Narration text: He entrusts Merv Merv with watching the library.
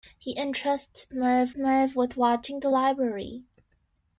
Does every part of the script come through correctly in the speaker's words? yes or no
yes